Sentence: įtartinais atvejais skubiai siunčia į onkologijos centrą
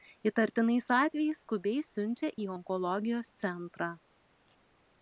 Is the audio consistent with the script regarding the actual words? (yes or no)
yes